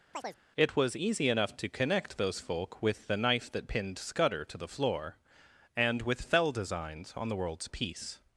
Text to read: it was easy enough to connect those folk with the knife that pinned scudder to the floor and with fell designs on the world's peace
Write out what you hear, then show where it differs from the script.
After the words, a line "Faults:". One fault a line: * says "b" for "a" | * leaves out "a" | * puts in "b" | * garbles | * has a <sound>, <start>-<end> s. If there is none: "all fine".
it was easy enough to connect those folk with the knife that pinned scudder to the floor and with fell designs on the world's peace
Faults:
* has a chirp, 0.1-0.4 s